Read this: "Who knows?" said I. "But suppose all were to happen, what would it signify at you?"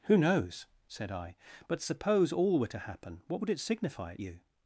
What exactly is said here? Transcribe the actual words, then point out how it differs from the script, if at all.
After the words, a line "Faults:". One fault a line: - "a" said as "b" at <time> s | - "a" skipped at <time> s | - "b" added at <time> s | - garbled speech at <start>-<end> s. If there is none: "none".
"Who knows?" said I. "But suppose all were to happen, what would it signify at you?"
Faults:
none